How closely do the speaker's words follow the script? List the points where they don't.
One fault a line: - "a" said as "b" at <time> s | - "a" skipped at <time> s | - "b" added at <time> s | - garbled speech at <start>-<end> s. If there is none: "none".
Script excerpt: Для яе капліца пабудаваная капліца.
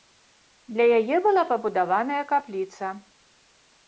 - "капліца" said as "была" at 1.2 s